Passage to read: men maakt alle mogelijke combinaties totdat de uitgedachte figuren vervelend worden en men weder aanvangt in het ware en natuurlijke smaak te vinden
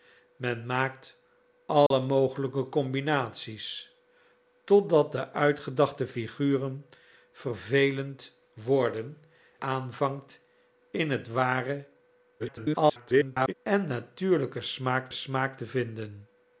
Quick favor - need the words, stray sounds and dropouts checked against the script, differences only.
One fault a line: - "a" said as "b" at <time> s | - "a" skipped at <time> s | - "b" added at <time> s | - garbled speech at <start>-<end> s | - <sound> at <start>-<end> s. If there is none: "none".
- dropout at 1.9-1.9 s
- "en men weder" skipped at 9.2 s
- garbled speech at 12.4-13.5 s
- "smaak" added at 15.1 s